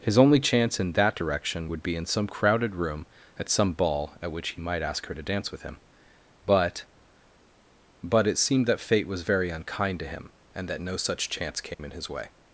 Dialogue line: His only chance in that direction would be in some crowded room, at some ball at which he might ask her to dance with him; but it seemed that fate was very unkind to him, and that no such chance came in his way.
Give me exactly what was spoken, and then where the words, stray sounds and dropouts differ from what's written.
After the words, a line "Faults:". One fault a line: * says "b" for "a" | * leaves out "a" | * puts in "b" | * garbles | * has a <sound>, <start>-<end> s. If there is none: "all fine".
His only chance in that direction would be in some crowded room, at some ball at which he might ask her to dance with him; but but it seemed that fate was very unkind to him, and that no such chance came in his way.
Faults:
* puts in "but"
* has a dropout, 11.7-11.8 s